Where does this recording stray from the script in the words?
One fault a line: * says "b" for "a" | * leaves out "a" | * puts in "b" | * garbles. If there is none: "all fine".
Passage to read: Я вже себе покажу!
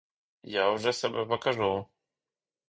all fine